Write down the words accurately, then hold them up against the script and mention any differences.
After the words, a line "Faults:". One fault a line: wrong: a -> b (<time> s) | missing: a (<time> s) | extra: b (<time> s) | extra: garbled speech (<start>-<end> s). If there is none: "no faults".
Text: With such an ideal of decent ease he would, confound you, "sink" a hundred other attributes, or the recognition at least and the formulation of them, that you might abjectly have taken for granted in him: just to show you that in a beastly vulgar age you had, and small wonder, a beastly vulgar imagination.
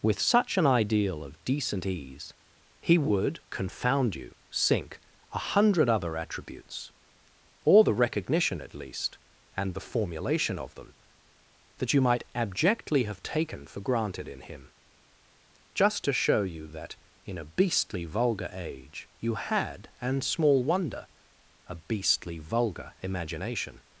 With such an ideal of decent ease he would, confound you, "sink" a hundred other attributes, or the recognition at least and the formulation of them, that you might abjectly have taken for granted in him: just to show you that in a beastly vulgar age you had, and small wonder, a beastly vulgar imagination.
Faults:
no faults